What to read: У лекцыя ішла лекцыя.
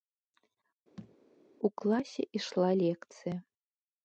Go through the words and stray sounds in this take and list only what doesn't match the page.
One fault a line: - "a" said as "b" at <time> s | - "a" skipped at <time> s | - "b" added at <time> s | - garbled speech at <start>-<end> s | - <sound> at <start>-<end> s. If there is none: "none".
- thud at 1.0-1.2 s
- "лекцыя" said as "класе" at 1.8 s